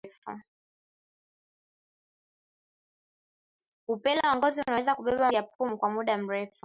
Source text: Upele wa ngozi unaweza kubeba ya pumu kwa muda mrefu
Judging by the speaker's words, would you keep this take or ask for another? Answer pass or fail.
pass